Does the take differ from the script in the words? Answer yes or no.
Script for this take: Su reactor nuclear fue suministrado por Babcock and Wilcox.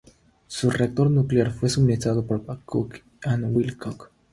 no